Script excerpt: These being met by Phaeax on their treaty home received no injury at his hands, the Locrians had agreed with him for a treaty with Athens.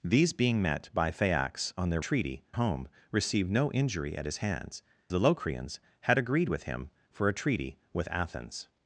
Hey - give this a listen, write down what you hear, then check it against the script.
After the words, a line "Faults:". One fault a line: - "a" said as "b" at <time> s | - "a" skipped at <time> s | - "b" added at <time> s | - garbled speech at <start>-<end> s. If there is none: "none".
These being met by Phaeax on their treaty home received no injury at his hands, the Locrians had agreed with him for a treaty with Athens.
Faults:
none